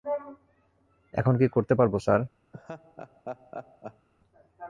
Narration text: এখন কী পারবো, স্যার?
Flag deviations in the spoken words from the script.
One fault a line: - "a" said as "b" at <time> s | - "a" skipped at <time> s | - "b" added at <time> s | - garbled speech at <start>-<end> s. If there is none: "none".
- "করতে" added at 1.5 s